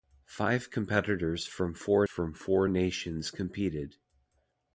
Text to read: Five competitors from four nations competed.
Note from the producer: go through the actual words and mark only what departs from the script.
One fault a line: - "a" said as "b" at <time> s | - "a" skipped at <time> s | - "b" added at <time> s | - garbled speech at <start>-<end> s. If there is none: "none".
- "from four" added at 2.0 s